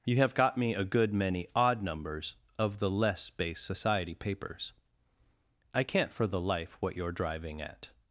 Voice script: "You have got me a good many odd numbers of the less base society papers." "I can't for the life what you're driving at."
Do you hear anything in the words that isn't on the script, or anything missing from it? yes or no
no